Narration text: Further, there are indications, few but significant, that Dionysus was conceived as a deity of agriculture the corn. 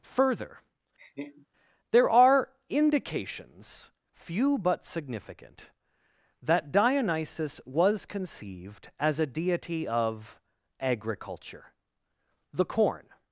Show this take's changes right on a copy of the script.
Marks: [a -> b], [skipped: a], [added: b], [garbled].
Further, there are indications, few but significant, that Dionysus was conceived as a deity of agriculture the corn.